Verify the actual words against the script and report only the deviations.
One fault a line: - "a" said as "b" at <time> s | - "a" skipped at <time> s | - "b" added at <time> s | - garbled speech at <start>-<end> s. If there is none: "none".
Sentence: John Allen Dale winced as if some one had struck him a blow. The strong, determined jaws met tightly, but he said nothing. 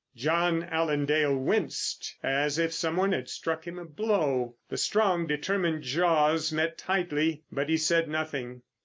none